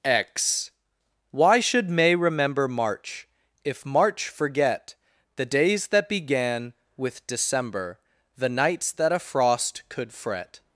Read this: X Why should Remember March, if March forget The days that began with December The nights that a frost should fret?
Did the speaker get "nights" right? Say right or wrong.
right